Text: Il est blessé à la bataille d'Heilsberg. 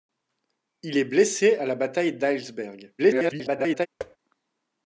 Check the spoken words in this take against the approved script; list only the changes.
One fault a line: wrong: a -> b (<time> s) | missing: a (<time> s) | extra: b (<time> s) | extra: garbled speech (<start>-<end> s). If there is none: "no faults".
extra: garbled speech (3.0-3.9 s)